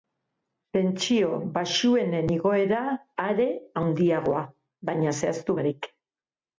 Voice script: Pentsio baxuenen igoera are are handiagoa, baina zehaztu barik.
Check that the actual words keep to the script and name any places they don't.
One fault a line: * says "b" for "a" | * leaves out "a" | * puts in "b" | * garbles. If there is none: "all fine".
* leaves out "are"